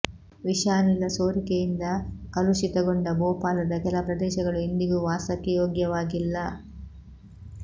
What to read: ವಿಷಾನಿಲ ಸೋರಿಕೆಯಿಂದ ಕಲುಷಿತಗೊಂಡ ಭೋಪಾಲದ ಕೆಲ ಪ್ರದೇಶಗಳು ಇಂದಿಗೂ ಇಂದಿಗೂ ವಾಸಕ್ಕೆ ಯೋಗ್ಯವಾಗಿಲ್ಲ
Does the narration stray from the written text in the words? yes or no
yes